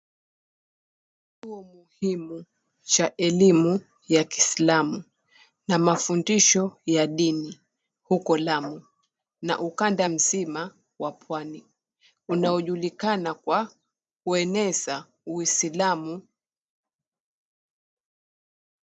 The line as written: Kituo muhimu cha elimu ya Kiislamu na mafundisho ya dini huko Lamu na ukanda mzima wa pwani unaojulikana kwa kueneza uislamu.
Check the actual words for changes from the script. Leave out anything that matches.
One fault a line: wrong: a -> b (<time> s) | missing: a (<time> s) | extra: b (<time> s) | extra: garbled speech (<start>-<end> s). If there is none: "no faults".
no faults